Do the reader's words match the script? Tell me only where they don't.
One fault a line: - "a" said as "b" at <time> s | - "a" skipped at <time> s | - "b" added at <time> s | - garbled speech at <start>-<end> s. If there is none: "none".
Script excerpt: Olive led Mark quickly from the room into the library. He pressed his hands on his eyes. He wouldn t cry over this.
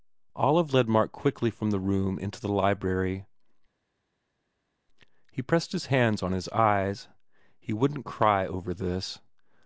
none